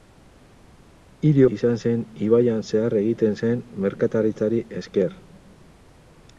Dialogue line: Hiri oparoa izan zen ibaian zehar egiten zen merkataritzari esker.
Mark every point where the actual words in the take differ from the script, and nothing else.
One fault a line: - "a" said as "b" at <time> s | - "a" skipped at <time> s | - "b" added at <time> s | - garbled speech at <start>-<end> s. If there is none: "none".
- "oparoa" skipped at 1.4 s